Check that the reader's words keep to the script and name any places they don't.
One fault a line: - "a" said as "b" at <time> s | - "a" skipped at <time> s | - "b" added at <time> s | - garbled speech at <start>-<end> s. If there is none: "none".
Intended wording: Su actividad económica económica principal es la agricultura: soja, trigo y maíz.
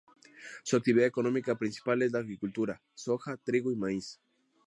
- "económica" skipped at 1.5 s